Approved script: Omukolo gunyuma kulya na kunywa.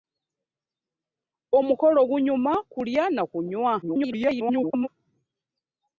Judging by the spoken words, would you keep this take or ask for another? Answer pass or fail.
fail